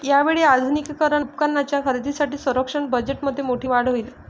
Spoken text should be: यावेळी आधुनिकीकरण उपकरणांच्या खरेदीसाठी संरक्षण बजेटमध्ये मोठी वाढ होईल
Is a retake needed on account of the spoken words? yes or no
no